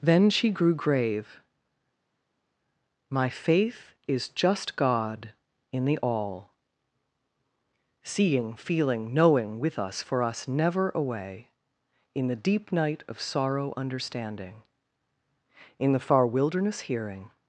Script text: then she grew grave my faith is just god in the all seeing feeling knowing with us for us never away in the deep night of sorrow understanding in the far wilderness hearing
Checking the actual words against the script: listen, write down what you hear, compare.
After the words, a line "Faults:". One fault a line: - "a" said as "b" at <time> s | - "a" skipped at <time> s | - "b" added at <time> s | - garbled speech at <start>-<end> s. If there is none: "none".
then she grew grave my faith is just god in the all seeing feeling knowing with us for us never away in the deep night of sorrow understanding in the far wilderness hearing
Faults:
none